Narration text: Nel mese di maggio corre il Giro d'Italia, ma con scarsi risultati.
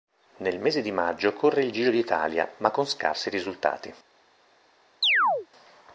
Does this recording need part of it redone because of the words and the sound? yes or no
yes